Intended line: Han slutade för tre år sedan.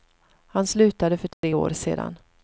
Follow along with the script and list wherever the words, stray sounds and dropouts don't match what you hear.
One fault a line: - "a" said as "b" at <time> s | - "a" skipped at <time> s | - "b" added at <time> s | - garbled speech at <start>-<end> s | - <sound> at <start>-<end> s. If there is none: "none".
- dropout at 1.3-1.4 s